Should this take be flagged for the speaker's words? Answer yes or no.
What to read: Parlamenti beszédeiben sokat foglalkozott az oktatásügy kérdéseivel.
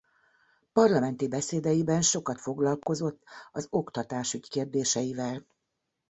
no